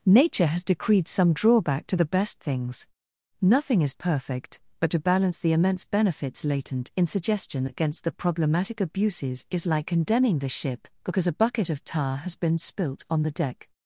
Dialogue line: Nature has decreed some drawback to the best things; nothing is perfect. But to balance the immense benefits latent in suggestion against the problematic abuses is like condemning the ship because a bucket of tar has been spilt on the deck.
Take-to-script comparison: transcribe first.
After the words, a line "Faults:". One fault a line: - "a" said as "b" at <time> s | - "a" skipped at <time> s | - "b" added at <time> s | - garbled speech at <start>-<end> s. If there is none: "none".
Nature has decreed some drawback to the best things; nothing is perfect. But to balance the immense benefits latent in suggestion against the problematic abuses is like condemning the ship because a bucket of tar has been spilt on the deck.
Faults:
none